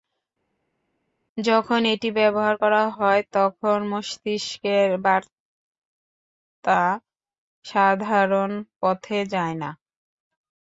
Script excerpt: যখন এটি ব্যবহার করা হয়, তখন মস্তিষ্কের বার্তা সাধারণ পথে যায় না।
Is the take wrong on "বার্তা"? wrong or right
right